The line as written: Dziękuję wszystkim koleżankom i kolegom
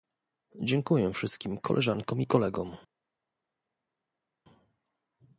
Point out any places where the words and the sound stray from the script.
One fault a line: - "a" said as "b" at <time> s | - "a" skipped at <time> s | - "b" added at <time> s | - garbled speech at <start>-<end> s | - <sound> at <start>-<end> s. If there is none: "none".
none